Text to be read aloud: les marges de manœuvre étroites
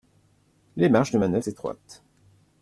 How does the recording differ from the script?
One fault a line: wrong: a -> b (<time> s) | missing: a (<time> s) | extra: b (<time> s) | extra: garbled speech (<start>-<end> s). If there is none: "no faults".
no faults